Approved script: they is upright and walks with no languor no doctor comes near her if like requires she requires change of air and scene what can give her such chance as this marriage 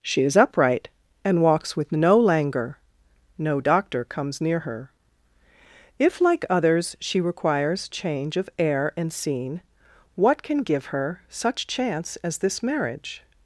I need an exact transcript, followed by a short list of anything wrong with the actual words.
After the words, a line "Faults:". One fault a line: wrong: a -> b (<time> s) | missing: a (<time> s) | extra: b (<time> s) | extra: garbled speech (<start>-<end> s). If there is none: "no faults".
she is upright and walks with no languor no doctor comes near her if like others she requires change of air and scene what can give her such chance as this marriage
Faults:
wrong: they -> she (0.0 s)
wrong: requires -> others (6.5 s)